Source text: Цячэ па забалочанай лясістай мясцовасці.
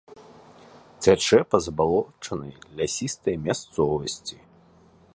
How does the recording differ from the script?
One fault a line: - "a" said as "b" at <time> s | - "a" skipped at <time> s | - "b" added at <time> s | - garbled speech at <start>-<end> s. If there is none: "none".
none